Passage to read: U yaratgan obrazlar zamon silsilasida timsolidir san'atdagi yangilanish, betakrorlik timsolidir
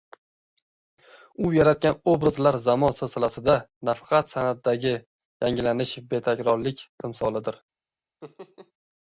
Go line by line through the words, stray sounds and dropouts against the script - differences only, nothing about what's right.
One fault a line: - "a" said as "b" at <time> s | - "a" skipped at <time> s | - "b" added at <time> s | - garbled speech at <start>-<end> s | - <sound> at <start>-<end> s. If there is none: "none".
- "timsolidir" said as "nafaqat" at 3.9 s
- laugh at 8.2-8.7 s